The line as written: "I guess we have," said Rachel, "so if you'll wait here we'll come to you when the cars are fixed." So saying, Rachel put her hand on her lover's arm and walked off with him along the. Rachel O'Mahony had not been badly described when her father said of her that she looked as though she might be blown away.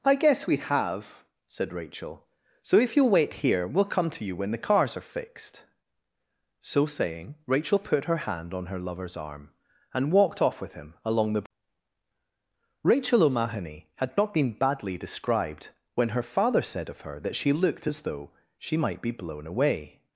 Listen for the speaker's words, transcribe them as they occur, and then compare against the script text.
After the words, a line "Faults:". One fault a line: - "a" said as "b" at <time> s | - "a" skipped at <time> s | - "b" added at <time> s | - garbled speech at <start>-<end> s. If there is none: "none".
"I guess we have," said Rachel, "so if you'll wait here we'll come to you when the cars are fixed." So saying, Rachel put her hand on her lover's arm and walked off with him along the. Rachel O'Mahony had not been badly described when her father said of her that she looked as though she might be blown away.
Faults:
none